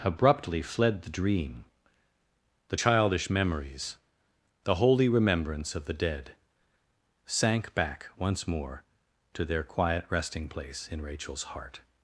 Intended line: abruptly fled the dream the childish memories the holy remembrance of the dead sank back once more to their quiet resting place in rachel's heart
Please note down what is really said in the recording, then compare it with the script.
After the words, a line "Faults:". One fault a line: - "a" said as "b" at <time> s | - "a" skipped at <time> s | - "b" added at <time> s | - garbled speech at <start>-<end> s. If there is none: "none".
abruptly fled the dream the childish memories the holy remembrance of the dead sank back once more to their quiet resting place in rachel's heart
Faults:
none